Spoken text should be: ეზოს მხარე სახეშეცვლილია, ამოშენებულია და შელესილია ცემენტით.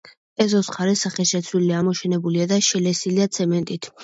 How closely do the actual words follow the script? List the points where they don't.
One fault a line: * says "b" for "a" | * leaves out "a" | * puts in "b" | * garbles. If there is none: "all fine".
all fine